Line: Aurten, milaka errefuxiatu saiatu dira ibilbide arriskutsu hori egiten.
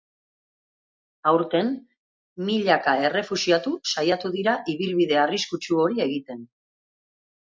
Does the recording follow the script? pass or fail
pass